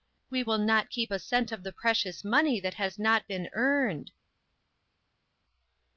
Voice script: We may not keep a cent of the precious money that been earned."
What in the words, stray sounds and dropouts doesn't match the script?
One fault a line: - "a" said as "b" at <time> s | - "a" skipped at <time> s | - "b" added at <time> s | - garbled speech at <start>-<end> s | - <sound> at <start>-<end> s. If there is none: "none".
- "may" said as "will" at 0.4 s
- "has not" added at 2.7 s